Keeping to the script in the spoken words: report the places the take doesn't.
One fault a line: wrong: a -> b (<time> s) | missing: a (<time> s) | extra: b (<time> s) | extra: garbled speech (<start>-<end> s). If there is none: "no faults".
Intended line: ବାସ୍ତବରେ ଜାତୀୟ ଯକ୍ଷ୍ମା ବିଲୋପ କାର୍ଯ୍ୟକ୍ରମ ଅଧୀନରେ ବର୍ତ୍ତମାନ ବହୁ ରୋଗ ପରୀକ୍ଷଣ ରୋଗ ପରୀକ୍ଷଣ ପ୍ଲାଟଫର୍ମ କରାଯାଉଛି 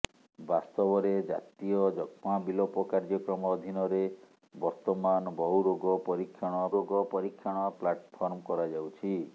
no faults